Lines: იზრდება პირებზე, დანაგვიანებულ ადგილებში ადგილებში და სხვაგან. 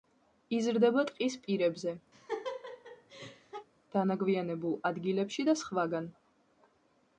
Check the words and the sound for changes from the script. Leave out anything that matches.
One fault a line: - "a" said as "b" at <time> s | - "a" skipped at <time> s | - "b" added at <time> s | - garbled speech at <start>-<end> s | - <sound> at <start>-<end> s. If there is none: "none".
- "ტყის" added at 1.1 s
- laugh at 2.1-3.7 s
- "ადგილებში" skipped at 5.5 s